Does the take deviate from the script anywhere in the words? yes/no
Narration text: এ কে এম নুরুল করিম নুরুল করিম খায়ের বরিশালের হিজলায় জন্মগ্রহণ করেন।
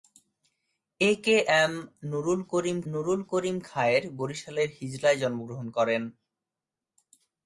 no